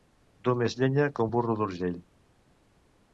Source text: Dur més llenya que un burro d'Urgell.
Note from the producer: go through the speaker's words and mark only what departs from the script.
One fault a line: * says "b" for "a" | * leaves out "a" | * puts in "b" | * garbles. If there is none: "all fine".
all fine